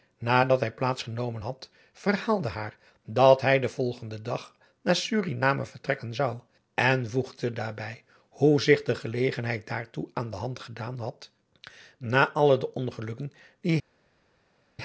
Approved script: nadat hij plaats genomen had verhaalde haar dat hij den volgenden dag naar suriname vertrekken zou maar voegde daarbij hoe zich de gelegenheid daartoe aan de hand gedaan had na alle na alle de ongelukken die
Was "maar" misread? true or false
true